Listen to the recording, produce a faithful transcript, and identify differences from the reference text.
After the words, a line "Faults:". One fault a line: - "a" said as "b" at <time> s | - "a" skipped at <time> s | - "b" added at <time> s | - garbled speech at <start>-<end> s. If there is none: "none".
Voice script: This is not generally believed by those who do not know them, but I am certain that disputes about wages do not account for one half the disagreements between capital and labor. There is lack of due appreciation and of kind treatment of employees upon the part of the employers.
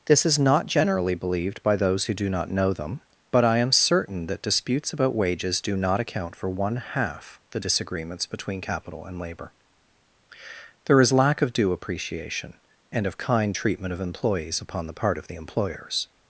This is not generally believed by those who do not know them, but I am certain that disputes about wages do not account for one half the disagreements between capital and labor. There is lack of due appreciation and of kind treatment of employees upon the part of the employers.
Faults:
none